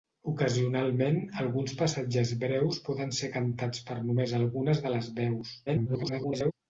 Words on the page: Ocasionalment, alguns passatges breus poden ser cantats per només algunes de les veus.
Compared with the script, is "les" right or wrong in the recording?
right